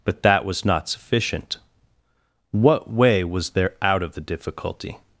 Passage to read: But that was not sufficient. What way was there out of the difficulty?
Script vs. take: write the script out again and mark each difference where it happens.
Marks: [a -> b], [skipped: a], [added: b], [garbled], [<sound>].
But that was not sufficient. What way was there out of the difficulty?